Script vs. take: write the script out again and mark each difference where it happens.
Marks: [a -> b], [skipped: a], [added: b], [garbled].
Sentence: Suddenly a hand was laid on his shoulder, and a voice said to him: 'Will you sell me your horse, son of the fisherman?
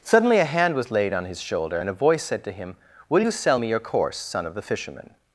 Suddenly a hand was laid on his shoulder, and a voice said to him: 'Will you sell me your [horse, -> course] son of the fisherman?